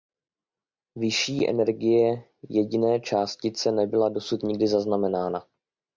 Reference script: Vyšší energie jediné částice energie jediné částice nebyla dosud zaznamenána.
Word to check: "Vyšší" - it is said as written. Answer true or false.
true